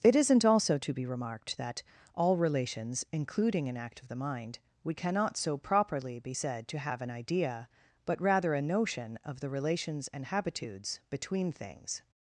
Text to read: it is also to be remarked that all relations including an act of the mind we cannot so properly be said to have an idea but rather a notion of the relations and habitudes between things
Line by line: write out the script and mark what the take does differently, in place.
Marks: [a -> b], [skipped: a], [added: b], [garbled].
it [is -> isn't] also to be remarked that all relations including an act of the mind we cannot so properly be said to have an idea but rather a notion of the relations and habitudes between things